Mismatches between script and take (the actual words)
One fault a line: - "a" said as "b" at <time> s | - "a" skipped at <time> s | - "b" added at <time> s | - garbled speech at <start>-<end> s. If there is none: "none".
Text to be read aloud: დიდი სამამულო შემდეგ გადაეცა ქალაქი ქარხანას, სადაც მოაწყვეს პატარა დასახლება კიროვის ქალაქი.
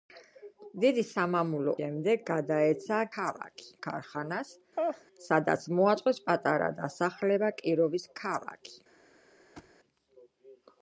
none